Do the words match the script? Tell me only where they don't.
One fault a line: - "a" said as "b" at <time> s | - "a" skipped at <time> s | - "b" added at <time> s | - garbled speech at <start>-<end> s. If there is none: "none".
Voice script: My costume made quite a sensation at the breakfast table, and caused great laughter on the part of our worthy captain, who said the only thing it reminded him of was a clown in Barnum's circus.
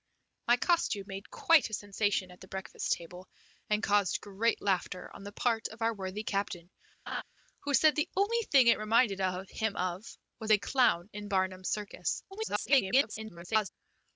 - garbled speech at 12.3-13.7 s